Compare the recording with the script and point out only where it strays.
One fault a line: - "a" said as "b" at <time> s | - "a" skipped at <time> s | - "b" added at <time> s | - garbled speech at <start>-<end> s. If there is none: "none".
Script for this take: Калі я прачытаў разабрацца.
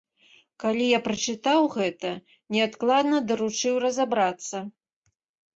- "гэта неадкладна даручыў" added at 1.8 s